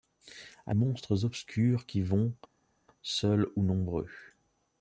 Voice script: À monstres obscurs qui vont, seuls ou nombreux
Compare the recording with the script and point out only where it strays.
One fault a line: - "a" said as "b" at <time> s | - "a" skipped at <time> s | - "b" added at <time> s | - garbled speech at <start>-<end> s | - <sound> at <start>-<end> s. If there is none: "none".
none